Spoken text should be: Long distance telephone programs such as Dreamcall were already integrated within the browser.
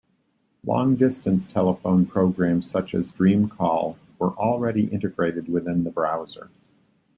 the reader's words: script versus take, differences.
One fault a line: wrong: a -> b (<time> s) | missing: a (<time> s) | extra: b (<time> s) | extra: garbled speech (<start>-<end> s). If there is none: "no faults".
no faults